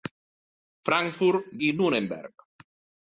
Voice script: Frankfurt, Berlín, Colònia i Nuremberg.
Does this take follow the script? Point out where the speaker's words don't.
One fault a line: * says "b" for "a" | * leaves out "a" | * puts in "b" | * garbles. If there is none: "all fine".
* leaves out "Berlín Colònia"